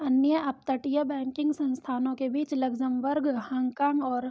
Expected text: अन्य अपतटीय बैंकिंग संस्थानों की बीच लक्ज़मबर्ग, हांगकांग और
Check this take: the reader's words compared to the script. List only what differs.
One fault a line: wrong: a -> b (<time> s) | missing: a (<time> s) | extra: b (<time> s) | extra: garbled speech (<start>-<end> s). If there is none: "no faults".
wrong: की -> के (2.1 s)